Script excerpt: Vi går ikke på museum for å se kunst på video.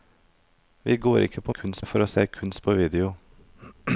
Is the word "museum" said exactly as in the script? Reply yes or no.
no